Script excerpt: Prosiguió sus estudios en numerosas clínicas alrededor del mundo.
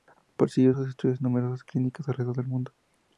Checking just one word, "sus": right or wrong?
right